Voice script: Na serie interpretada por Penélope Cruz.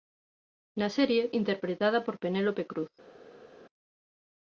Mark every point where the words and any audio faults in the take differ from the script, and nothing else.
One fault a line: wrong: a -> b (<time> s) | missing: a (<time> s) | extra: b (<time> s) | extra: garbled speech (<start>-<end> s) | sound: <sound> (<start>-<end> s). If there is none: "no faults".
no faults